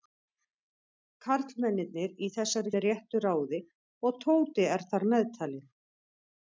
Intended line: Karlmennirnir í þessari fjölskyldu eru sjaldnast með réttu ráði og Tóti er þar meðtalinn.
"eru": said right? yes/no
no